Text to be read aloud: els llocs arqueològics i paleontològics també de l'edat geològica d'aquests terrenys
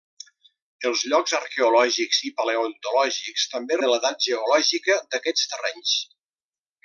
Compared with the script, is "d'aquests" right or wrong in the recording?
right